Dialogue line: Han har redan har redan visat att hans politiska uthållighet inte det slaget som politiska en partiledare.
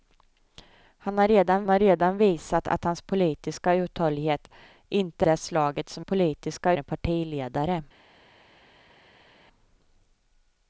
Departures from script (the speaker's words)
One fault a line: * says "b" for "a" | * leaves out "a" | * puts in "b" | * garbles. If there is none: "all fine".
all fine